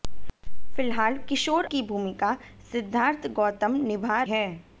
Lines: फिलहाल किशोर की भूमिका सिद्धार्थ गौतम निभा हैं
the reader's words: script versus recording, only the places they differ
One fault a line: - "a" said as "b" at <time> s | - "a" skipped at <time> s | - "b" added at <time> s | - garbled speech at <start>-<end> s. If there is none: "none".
none